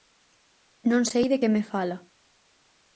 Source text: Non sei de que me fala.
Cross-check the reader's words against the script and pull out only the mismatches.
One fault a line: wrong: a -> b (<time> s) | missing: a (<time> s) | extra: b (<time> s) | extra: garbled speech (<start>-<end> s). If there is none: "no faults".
no faults